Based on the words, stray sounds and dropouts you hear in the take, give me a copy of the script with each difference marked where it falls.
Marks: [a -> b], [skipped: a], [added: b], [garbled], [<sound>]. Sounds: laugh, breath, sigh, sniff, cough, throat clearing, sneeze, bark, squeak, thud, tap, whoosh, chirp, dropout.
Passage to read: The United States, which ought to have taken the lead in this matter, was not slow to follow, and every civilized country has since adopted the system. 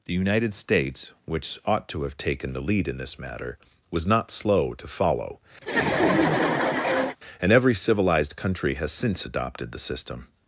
The United States, which ought to have taken the lead in this matter, was not slow to follow, [laugh] and every civilized country has since adopted the system.